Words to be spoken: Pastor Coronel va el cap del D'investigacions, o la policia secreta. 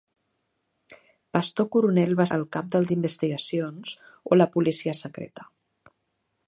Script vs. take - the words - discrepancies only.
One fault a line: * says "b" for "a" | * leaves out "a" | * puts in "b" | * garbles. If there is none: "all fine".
all fine